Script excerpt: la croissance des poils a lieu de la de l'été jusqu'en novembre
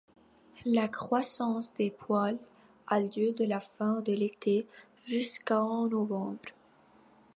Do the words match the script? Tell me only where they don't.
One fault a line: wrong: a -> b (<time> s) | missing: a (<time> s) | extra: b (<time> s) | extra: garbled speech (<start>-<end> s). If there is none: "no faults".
extra: fin (3.6 s)